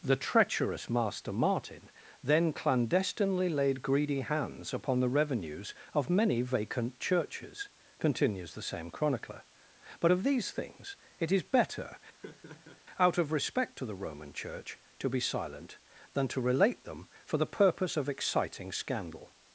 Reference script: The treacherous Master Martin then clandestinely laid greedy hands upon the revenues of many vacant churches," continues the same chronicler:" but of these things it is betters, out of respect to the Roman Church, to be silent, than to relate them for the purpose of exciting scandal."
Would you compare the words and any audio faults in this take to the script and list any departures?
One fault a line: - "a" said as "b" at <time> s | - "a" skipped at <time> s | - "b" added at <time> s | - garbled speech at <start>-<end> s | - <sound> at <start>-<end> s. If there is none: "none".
- "betters" said as "better" at 11.4 s
- laugh at 12.2-12.8 s